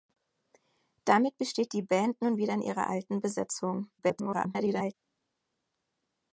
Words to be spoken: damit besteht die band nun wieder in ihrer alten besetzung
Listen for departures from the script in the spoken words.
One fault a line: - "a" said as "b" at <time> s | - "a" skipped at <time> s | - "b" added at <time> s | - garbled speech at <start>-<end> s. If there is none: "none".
- garbled speech at 4.0-4.9 s